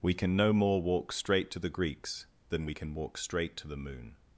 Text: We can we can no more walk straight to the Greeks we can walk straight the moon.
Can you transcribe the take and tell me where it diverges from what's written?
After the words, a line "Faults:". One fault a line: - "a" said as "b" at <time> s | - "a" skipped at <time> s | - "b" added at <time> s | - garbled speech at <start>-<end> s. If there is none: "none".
We can no more walk straight to the Greeks than we can walk straight to the moon.
Faults:
- "we can" skipped at 0.3 s
- "than" added at 2.5 s
- "to" added at 3.6 s